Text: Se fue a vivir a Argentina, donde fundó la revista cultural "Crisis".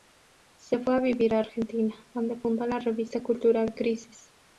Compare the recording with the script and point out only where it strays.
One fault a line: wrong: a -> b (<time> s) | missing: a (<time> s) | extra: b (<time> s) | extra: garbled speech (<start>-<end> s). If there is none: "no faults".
no faults